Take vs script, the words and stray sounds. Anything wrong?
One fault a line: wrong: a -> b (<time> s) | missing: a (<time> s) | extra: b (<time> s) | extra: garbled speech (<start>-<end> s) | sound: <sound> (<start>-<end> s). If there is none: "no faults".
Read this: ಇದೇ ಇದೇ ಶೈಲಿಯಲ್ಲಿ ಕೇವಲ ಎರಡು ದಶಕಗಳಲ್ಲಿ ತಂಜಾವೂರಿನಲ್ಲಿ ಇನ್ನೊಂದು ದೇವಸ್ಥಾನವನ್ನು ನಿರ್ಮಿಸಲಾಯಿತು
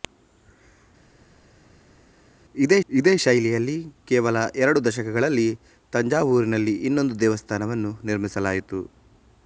no faults